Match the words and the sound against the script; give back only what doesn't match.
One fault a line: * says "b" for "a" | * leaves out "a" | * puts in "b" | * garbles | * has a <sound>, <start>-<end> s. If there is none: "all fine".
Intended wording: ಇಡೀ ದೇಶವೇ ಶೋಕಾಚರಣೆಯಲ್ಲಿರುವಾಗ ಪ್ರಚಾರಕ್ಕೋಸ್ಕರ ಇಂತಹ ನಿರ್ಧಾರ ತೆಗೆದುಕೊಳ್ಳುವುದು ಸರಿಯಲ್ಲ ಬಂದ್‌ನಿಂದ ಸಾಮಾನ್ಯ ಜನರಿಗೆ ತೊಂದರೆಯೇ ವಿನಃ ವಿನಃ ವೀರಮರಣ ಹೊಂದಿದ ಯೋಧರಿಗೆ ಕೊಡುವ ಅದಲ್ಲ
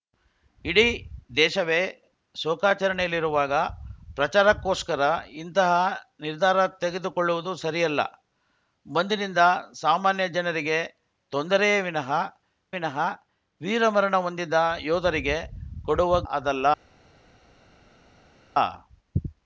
all fine